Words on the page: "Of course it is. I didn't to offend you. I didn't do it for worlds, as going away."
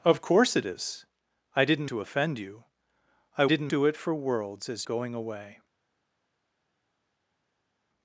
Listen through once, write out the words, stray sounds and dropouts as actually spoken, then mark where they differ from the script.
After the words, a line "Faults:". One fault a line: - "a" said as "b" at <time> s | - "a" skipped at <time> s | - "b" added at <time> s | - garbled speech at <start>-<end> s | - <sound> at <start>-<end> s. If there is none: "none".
"Of course it is. I didn't to offend you. I didn't do it for worlds, as going away."
Faults:
none